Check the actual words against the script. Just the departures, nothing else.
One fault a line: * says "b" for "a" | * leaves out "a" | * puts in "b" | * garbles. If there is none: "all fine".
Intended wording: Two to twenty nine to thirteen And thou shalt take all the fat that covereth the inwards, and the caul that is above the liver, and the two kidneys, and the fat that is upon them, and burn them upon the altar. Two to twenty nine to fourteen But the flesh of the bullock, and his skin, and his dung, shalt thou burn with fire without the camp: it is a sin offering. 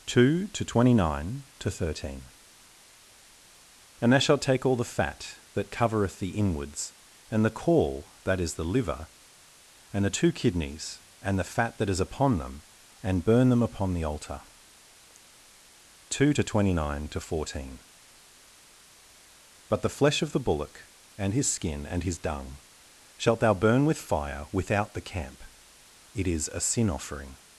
* leaves out "above"